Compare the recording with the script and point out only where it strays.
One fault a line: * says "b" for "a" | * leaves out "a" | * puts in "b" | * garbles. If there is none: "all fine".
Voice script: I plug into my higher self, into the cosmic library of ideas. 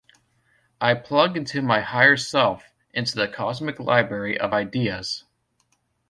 all fine